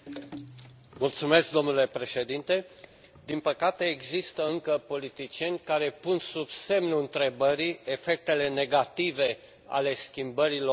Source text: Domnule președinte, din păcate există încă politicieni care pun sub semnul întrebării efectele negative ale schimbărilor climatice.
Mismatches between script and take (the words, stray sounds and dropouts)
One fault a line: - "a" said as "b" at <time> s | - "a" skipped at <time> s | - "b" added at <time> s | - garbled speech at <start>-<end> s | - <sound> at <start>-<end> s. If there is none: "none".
none